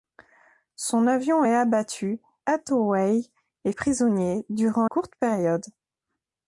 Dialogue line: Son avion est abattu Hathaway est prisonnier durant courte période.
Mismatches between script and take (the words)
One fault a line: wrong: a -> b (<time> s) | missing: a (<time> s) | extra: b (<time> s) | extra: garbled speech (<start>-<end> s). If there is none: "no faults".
no faults